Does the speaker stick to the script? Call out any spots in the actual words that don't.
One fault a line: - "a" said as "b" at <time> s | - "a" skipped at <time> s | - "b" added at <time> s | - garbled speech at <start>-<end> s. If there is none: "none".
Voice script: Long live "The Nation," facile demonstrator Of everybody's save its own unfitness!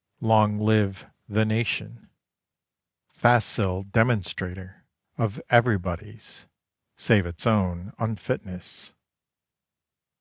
none